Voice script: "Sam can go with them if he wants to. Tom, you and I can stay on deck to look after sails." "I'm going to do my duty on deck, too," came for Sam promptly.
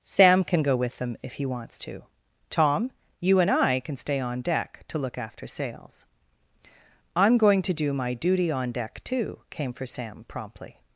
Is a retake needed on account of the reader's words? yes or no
no